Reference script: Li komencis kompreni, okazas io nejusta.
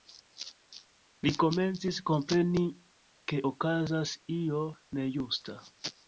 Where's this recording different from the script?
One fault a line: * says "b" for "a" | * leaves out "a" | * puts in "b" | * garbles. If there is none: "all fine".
* puts in "ke"